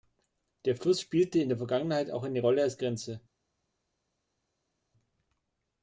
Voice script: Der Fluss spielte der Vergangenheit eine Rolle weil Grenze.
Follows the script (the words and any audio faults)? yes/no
no